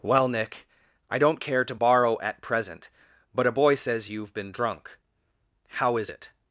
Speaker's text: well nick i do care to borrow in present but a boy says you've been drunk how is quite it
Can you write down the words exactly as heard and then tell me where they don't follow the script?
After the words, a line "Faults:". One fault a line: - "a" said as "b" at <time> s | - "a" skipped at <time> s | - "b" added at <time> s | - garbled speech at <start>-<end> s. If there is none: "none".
well nick i don't care to borrow at present but a boy says you've been drunk how is it
Faults:
- "do" said as "don't" at 1.2 s
- "in" said as "at" at 2.2 s
- "quite" skipped at 6.1 s